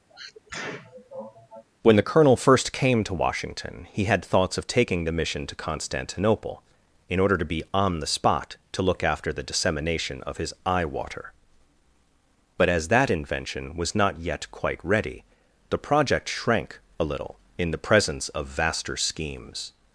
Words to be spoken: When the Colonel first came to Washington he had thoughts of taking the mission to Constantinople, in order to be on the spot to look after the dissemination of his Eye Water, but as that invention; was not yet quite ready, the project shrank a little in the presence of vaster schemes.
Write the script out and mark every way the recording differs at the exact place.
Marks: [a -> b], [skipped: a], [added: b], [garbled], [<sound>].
[sneeze] When the Colonel first came to Washington he had thoughts of taking the mission to Constantinople, in order to be on the spot to look after the dissemination of his Eye Water, but as that invention; was not yet quite ready, the project shrank a little in the presence of vaster schemes.